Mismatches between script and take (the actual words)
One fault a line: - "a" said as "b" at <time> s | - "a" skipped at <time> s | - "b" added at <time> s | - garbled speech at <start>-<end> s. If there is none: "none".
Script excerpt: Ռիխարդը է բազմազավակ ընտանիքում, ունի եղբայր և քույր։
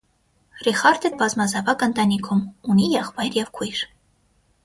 none